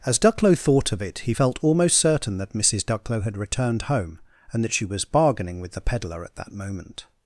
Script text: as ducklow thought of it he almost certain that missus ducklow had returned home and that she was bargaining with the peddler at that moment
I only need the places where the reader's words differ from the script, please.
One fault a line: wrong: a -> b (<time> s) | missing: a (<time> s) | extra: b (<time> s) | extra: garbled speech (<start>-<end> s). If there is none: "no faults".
extra: felt (1.3 s)